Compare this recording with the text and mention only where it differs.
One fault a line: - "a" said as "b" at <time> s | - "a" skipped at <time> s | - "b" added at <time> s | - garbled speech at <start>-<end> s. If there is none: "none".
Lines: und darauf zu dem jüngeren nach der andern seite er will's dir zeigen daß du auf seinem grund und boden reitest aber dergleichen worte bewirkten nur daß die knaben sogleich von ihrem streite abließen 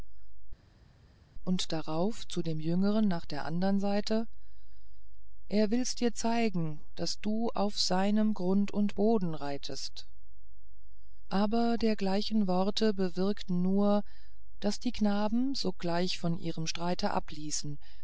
none